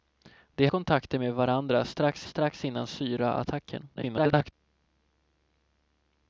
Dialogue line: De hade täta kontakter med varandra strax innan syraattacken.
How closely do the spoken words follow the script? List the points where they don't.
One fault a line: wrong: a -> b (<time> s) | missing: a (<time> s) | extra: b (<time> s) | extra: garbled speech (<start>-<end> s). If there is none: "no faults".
missing: hade täta (0.7 s)
extra: strax (2.2 s)
extra: garbled speech (3.9-4.5 s)